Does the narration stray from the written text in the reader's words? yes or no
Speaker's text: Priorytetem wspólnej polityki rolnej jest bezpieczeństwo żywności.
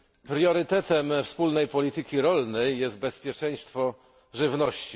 no